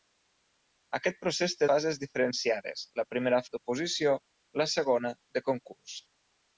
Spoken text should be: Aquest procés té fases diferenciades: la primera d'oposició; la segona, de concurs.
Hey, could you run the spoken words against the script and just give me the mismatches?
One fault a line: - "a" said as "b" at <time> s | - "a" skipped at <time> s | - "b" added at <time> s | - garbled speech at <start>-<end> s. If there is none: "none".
none